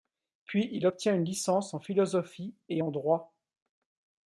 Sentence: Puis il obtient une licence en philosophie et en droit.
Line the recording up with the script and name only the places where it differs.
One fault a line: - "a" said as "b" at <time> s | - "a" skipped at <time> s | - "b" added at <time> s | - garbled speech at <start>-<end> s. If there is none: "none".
none